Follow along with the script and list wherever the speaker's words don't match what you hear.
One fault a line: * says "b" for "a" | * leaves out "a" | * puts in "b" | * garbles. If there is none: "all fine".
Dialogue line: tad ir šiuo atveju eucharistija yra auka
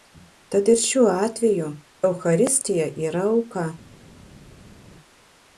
all fine